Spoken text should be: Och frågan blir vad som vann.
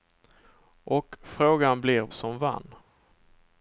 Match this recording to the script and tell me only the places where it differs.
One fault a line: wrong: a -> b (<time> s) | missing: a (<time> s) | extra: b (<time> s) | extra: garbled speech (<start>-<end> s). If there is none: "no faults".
missing: vad (2.1 s)